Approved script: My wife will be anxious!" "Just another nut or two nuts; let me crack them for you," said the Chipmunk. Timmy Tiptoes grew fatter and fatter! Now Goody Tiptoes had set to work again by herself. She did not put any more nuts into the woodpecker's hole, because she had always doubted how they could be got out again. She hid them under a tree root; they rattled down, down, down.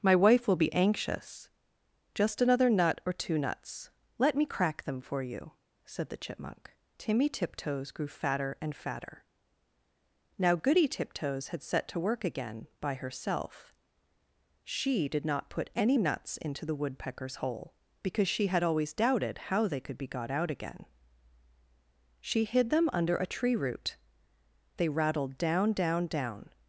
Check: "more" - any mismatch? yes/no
yes